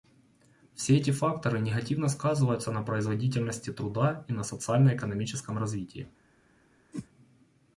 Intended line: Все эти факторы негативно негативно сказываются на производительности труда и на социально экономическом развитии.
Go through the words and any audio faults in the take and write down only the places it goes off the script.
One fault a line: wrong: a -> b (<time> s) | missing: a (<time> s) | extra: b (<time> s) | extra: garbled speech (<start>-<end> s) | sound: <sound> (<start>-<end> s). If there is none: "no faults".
missing: негативно (2.1 s)
sound: whoosh (6.9-7.1 s)